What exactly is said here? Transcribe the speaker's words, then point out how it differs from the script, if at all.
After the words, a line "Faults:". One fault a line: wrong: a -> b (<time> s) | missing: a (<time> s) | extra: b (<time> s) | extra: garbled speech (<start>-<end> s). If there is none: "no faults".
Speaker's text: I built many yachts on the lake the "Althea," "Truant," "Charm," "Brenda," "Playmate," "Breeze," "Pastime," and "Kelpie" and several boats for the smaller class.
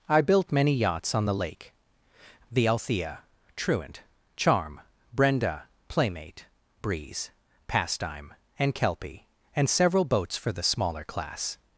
I built many yachts on the lake the "Althea," "Truant," "Charm," "Brenda," "Playmate," "Breeze," "Pastime," and "Kelpie" and several boats for the smaller class.
Faults:
no faults